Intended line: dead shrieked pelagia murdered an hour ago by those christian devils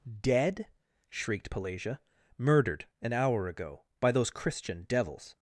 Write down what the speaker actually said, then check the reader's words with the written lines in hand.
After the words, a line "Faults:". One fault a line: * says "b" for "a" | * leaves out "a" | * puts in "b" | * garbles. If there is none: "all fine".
dead shrieked pelagia murdered an hour ago by those christian devils
Faults:
all fine